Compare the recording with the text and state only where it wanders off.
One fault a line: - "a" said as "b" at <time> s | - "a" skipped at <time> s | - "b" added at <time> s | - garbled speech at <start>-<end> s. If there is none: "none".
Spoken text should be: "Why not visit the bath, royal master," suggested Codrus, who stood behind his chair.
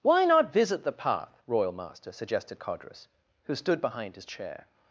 - "bath" said as "path" at 0.9 s